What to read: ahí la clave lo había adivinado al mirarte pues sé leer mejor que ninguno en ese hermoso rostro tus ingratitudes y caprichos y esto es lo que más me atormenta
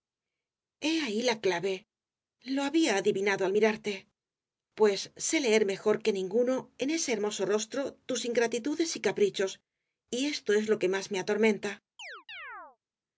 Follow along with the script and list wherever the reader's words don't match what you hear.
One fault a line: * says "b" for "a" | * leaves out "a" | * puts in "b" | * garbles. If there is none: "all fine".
all fine